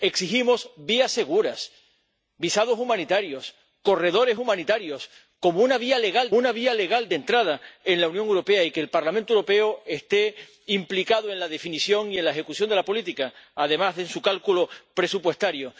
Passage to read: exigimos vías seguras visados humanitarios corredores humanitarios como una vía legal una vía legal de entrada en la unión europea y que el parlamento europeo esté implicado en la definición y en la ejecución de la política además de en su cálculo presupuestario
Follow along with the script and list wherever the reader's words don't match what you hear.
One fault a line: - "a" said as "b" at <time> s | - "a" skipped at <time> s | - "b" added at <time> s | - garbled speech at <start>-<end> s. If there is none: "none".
none